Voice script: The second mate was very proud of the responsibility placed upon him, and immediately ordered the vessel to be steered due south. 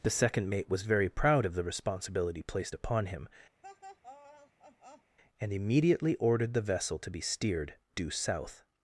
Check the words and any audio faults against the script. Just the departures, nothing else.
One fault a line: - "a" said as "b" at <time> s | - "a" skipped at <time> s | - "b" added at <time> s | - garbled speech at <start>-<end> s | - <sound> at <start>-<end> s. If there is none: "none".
- laugh at 3.6-5.2 s